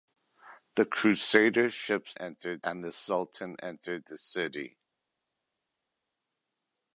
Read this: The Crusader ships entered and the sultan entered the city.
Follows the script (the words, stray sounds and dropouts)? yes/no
yes